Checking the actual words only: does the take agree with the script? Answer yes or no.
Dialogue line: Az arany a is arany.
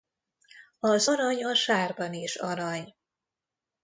no